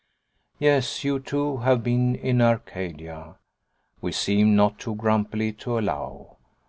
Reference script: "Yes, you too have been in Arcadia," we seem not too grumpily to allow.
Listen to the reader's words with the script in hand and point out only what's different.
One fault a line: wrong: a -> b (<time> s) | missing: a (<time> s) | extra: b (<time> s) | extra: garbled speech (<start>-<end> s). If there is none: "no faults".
no faults